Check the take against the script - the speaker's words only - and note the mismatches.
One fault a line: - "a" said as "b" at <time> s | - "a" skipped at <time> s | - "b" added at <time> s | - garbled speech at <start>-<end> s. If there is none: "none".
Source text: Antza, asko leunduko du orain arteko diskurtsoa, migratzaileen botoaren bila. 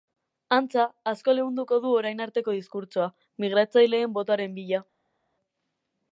none